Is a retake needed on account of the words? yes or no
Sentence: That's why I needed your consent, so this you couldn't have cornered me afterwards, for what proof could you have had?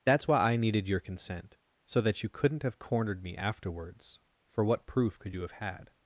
yes